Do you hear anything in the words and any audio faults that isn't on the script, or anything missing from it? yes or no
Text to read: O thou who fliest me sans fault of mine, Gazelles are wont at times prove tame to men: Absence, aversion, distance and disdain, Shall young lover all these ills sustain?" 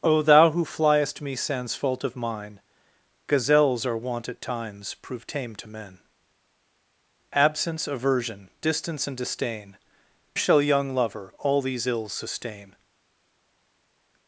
no